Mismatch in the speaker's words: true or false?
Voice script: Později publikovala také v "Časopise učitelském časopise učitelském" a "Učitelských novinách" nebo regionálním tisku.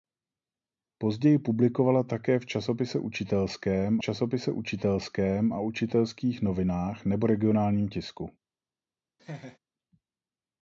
false